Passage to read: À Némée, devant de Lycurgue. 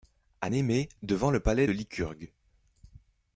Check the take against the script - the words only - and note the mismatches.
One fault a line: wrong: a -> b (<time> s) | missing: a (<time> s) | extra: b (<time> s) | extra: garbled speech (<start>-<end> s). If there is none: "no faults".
extra: le palais (1.3 s)